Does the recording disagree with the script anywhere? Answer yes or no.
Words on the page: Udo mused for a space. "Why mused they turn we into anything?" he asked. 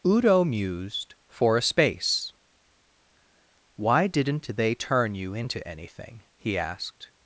yes